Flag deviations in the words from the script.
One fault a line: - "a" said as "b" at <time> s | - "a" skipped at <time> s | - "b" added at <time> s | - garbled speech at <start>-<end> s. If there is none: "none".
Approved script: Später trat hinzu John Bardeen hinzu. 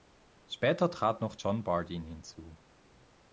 - "hinzu" said as "noch" at 1.2 s